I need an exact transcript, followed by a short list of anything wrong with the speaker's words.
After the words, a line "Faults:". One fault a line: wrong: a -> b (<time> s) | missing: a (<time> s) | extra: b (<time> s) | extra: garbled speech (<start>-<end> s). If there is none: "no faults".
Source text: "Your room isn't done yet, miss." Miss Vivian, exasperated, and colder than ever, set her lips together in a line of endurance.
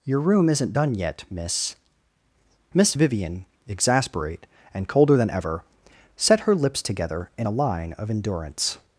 "Your room isn't done yet, miss." Miss Vivian, exasperate, and colder than ever, set her lips together in a line of endurance.
Faults:
wrong: exasperated -> exasperate (3.7 s)